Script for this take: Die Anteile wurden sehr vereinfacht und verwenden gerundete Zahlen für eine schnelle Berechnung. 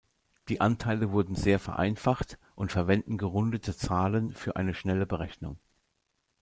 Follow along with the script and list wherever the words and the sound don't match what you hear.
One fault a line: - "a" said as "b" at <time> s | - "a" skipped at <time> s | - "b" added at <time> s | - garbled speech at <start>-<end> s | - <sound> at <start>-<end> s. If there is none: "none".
none